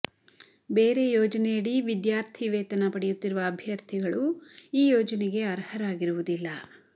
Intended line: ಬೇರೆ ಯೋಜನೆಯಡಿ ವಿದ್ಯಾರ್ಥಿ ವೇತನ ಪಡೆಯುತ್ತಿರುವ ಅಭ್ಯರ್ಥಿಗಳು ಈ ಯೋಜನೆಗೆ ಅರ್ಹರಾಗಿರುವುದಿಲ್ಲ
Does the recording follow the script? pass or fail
pass